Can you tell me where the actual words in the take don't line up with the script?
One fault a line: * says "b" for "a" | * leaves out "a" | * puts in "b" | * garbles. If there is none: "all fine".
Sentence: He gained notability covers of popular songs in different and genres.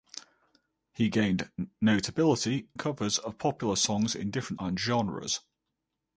all fine